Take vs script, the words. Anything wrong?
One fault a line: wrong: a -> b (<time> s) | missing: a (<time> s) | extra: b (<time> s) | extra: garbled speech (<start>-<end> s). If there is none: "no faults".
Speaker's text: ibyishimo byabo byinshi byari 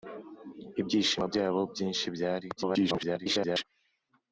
extra: garbled speech (2.6-3.6 s)